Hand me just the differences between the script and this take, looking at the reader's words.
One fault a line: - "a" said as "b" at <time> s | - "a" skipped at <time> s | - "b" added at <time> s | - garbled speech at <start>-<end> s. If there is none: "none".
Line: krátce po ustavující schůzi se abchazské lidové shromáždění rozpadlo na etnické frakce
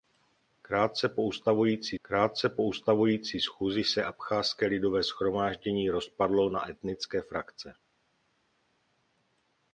- "krátce po ustavující" added at 2.0 s